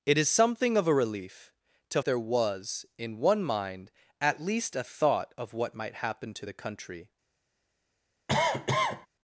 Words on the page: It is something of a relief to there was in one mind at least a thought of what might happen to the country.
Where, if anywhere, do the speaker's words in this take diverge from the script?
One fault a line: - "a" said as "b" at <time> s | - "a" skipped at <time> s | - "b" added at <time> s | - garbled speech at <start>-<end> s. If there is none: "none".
none